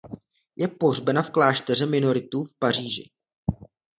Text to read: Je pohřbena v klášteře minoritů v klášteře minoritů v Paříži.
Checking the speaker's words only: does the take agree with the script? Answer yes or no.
no